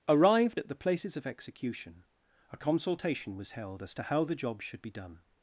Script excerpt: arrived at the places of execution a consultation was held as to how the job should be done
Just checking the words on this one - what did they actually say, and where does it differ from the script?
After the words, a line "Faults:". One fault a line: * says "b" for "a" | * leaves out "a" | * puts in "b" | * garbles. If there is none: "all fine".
arrived at the places of execution a consultation was held as to how the job should be done
Faults:
all fine